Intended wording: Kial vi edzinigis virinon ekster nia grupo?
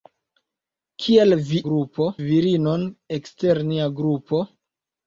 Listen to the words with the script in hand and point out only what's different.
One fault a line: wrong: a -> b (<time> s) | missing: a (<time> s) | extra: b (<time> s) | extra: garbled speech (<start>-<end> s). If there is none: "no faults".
wrong: edzinigis -> grupo (1.7 s)